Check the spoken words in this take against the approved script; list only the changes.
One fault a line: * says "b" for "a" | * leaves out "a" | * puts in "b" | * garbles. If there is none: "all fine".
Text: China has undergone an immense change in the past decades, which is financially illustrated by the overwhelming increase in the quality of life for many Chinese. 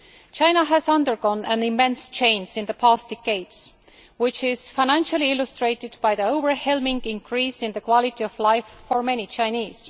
all fine